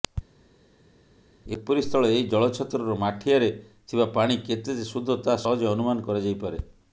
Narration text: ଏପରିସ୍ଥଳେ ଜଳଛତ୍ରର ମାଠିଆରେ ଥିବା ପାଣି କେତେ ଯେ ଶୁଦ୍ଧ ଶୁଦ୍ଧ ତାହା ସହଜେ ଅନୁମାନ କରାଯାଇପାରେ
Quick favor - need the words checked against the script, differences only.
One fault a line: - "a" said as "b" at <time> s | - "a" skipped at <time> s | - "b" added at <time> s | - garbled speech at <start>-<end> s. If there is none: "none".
- "ଏହି" added at 2.1 s
- "ଶୁଦ୍ଧ" skipped at 5.2 s